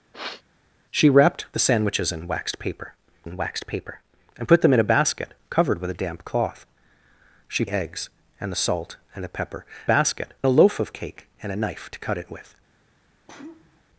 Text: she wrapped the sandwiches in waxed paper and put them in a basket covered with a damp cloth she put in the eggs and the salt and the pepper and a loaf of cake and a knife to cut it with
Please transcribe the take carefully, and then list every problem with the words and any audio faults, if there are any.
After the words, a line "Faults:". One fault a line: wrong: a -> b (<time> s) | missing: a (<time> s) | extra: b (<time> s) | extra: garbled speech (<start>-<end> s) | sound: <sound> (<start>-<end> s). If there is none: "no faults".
she wrapped the sandwiches in waxed paper in waxed paper and put them in a basket covered with a damp cloth she eggs and the salt and the pepper basket a loaf of cake and a knife to cut it with
Faults:
sound: sniff (0.1-0.4 s)
extra: in waxed paper (3.2 s)
missing: put in the (7.6 s)
wrong: and -> basket (9.8 s)
sound: sneeze (13.3-13.8 s)